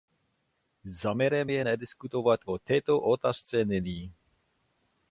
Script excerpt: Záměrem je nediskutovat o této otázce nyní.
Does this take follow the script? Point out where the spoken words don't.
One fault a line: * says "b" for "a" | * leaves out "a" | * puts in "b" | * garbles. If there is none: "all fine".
all fine